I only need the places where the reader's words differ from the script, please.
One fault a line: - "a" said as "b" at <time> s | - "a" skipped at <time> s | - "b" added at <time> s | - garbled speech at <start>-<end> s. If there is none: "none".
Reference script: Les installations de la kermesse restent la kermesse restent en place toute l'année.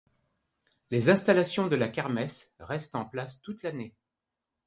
- "la kermesse restent" skipped at 3.0 s